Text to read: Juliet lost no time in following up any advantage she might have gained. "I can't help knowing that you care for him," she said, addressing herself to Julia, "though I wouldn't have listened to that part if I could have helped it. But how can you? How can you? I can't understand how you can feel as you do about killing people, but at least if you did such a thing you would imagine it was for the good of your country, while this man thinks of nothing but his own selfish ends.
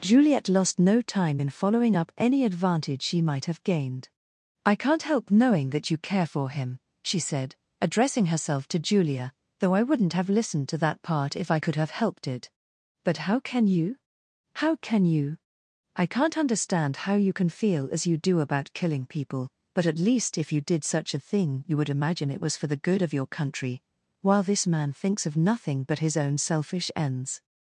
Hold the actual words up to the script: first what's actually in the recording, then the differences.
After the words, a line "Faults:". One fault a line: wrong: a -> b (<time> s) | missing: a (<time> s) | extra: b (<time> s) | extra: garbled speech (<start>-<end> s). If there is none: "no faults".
Juliet lost no time in following up any advantage she might have gained. "I can't help knowing that you care for him," she said, addressing herself to Julia, "though I wouldn't have listened to that part if I could have helped it. But how can you? How can you? I can't understand how you can feel as you do about killing people, but at least if you did such a thing you would imagine it was for the good of your country, while this man thinks of nothing but his own selfish ends.
Faults:
no faults